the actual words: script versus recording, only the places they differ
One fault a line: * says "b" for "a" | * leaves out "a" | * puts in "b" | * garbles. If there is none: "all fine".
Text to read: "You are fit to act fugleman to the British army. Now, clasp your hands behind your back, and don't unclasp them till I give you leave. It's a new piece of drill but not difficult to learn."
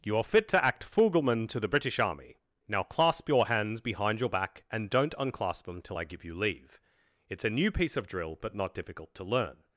all fine